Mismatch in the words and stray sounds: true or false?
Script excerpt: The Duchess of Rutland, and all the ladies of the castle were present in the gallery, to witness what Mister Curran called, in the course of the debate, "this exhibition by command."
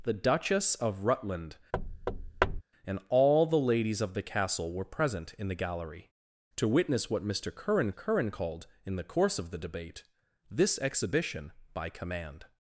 true